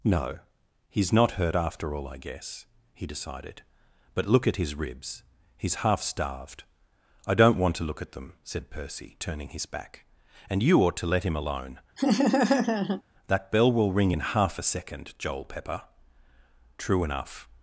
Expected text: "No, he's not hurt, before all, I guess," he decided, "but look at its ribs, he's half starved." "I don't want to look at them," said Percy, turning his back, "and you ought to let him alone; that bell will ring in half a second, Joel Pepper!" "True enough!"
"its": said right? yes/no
no